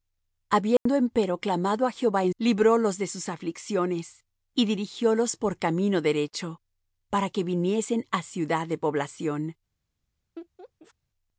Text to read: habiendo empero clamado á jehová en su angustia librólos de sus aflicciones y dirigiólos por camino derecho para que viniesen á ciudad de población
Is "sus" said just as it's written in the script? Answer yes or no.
yes